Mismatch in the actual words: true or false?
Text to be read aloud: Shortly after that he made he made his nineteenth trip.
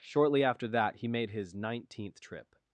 true